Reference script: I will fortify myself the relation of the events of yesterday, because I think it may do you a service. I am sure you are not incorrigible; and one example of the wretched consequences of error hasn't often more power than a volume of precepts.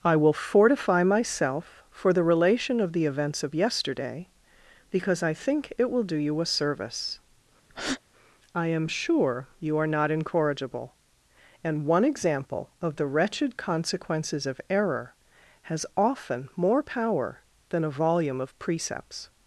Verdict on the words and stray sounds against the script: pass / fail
fail